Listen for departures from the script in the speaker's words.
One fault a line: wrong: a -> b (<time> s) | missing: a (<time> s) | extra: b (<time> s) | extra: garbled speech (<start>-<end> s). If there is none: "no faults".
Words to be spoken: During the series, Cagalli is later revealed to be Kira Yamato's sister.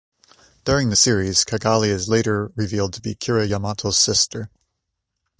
no faults